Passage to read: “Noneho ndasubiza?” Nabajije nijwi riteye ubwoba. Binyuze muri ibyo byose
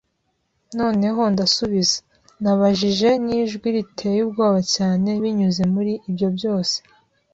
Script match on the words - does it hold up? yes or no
no